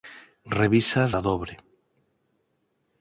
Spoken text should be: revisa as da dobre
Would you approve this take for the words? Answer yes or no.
yes